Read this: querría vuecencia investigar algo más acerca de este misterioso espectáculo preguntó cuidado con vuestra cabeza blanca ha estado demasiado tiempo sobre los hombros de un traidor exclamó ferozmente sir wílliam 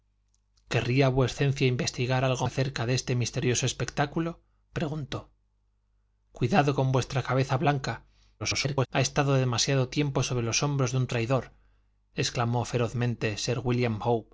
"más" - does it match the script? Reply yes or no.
no